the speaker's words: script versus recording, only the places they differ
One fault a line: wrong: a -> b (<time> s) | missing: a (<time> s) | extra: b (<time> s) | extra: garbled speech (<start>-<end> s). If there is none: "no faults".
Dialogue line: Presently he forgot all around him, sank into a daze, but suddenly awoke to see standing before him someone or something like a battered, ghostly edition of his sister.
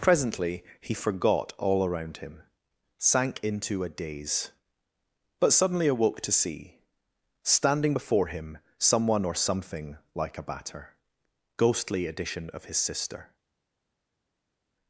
wrong: battered -> batter (10.4 s)